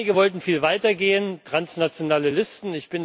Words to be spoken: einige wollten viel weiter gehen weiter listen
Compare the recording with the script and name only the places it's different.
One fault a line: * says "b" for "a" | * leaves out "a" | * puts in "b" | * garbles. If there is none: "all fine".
* says "transnationale" for "weiter"